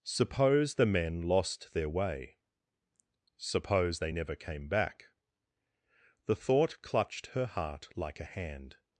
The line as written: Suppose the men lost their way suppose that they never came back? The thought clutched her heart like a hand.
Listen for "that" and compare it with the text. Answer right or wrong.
wrong